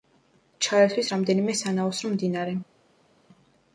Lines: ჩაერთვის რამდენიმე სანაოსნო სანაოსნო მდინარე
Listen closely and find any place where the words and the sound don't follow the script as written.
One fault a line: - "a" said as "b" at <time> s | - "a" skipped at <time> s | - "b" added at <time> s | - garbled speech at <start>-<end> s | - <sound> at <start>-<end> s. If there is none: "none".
- "სანაოსნო" skipped at 2.1 s